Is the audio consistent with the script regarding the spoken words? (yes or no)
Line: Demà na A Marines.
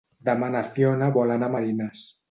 no